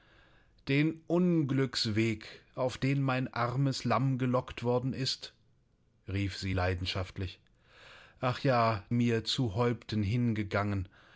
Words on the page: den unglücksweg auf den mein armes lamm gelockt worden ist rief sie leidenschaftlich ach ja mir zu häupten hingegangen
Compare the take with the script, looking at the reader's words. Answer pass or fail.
pass